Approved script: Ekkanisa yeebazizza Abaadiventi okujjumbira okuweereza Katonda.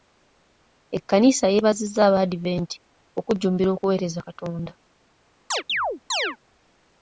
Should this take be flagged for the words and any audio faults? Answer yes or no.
yes